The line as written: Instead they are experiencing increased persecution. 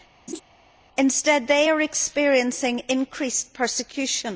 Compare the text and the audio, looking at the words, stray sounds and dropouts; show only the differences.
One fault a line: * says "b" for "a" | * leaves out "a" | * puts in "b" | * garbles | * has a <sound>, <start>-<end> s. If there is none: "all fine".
* has a laugh, 0.3-0.4 s